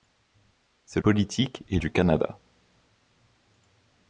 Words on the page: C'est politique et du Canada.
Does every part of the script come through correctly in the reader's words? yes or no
yes